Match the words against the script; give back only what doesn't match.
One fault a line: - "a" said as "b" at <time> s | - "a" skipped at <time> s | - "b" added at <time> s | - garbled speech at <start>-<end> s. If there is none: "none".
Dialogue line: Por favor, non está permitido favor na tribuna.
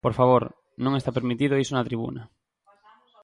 - "favor" said as "iso" at 1.6 s